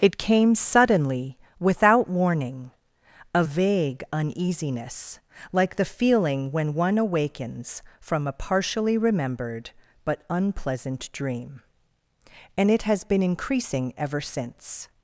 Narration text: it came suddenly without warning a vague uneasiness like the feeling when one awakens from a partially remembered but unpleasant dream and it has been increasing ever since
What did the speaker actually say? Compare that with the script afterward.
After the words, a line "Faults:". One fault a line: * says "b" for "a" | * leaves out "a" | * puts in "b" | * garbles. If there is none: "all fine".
it came suddenly without warning a vague uneasiness like the feeling when one awakens from a partially remembered but unpleasant dream and it has been increasing ever since
Faults:
all fine